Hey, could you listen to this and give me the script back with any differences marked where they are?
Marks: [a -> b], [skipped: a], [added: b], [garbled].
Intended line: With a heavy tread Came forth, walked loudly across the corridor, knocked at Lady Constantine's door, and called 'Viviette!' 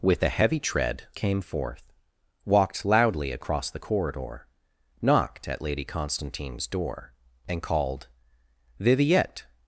With a heavy tread Came forth, walked loudly across the corridor, knocked at Lady Constantine's door, and called 'Viviette!'